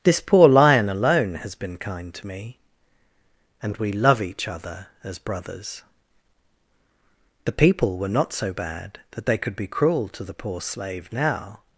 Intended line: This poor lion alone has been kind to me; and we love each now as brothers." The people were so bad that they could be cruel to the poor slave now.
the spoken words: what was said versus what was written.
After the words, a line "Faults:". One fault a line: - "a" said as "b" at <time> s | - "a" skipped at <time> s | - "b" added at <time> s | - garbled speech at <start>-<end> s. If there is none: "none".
This poor lion alone has been kind to me; and we love each other as brothers." The people were not so bad that they could be cruel to the poor slave now.
Faults:
- "now" said as "other" at 4.5 s
- "not" added at 8.1 s